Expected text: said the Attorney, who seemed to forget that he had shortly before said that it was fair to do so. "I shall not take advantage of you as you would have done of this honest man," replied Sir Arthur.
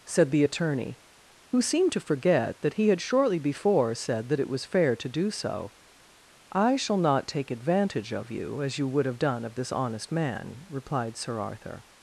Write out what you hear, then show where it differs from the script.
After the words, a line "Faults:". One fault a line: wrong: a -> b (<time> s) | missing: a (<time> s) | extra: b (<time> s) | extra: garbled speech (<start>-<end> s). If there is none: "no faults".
said the Attorney, who seemed to forget that he had shortly before said that it was fair to do so. "I shall not take advantage of you as you would have done of this honest man," replied Sir Arthur.
Faults:
no faults